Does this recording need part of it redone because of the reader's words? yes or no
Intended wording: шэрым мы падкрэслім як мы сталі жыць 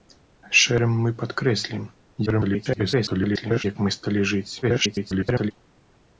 yes